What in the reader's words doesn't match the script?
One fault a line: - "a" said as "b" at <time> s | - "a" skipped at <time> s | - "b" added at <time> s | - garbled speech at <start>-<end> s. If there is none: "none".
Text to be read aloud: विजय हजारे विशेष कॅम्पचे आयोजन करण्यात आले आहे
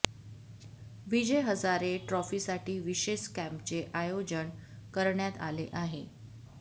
- "ट्रॉफीसाठी" added at 2.1 s